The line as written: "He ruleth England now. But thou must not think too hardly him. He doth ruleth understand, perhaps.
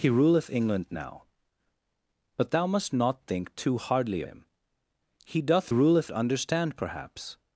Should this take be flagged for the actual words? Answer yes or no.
no